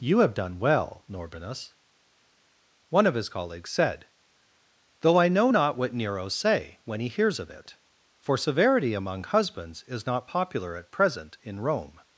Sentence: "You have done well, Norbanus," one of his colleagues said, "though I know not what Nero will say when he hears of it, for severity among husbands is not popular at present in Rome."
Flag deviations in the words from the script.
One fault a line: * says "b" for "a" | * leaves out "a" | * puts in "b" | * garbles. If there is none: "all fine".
* leaves out "will"